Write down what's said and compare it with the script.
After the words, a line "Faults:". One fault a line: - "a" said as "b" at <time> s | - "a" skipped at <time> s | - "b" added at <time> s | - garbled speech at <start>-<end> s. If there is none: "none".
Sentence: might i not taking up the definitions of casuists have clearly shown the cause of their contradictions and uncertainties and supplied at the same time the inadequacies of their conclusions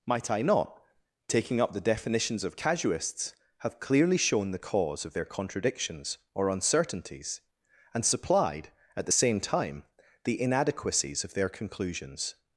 might i not taking up the definitions of casuists have clearly shown the cause of their contradictions or uncertainties and supplied at the same time the inadequacies of their conclusions
Faults:
- "and" said as "or" at 6.3 s